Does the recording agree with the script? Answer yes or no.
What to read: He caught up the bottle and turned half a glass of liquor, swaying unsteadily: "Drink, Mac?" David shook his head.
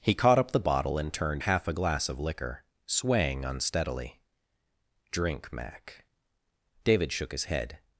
yes